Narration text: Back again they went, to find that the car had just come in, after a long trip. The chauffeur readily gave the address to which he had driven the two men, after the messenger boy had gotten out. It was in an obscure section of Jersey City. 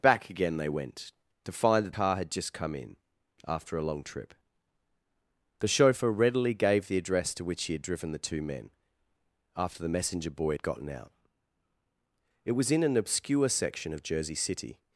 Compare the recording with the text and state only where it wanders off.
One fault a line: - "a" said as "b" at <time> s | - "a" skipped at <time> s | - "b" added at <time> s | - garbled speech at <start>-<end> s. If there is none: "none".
- "the" skipped at 1.9 s